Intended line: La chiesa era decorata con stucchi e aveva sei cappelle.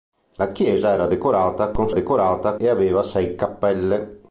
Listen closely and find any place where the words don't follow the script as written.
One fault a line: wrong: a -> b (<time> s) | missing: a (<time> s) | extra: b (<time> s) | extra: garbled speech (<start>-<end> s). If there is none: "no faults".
wrong: stucchi -> decorata (1.9 s)